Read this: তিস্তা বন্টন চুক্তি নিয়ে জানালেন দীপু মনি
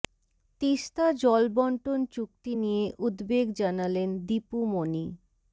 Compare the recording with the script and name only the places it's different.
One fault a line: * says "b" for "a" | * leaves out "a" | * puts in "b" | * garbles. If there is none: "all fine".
* puts in "জল"
* puts in "উদ্বেগ"